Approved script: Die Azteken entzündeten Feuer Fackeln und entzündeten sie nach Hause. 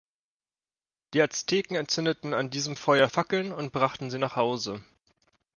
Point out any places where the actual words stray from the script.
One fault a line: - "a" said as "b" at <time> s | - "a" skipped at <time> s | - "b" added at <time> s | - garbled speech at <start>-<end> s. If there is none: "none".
- "an diesem" added at 2.3 s
- "entzündeten" said as "brachten" at 3.7 s